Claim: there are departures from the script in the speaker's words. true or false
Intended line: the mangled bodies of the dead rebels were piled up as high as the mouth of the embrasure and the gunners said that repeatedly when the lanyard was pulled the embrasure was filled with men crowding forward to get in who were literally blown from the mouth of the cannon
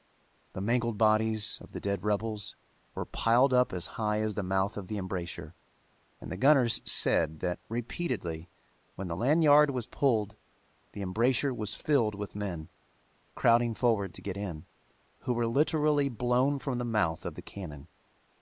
false